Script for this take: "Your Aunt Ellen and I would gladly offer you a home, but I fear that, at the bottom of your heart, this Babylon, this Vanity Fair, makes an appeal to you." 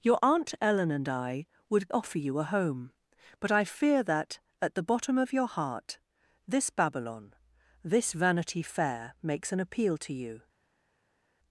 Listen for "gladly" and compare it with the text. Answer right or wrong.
wrong